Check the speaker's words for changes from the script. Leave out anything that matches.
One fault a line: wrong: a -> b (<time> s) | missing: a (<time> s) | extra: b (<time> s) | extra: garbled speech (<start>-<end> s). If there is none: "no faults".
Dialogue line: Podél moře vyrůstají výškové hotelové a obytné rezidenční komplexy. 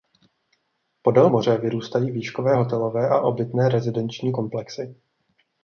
no faults